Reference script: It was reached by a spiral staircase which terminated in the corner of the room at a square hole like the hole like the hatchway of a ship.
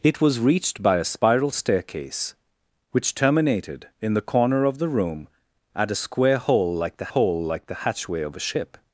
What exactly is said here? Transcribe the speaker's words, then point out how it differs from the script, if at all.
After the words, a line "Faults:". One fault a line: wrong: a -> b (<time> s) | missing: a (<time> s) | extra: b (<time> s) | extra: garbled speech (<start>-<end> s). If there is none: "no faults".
It was reached by a spiral staircase which terminated in the corner of the room at a square hole like the hole like the hatchway of a ship.
Faults:
no faults